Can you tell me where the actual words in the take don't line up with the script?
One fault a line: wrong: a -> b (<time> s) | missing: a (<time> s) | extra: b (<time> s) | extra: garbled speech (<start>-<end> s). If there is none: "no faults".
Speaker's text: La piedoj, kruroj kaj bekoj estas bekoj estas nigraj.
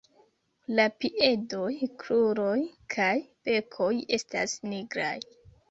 missing: bekoj estas (4.6 s)